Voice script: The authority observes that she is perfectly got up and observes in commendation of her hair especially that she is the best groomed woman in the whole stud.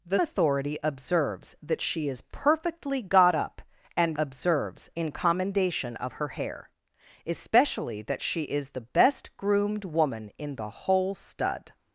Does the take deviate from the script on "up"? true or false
false